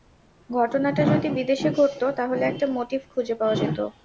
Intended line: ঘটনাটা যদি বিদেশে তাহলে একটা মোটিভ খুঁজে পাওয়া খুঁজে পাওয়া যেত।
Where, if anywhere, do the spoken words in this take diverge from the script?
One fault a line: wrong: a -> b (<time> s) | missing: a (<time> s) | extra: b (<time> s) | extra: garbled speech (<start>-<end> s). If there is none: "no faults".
extra: ঘটত (1.7 s)
missing: খুঁজে পাওয়া (3.5 s)